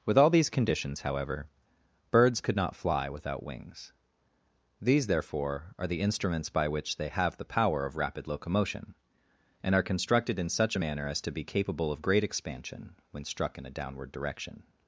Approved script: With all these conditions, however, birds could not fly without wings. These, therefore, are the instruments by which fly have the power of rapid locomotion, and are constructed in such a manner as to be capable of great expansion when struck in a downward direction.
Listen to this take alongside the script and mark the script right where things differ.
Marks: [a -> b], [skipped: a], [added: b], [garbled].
With all these conditions, however, birds could not fly without wings. These, therefore, are the instruments by which [fly -> they] have the power of rapid locomotion, and are constructed in such a manner as to be capable of great expansion when struck in a downward direction.